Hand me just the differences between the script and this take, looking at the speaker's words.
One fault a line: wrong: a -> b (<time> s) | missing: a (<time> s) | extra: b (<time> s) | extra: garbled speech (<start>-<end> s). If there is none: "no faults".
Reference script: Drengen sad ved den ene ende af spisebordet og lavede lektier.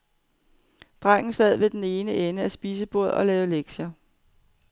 no faults